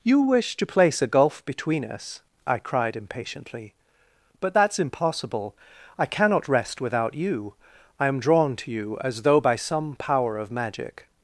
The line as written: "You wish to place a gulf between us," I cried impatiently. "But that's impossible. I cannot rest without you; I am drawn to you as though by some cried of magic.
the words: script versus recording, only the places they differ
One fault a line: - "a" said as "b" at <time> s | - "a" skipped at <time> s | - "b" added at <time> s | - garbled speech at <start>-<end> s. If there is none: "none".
- "cried" said as "power" at 10.0 s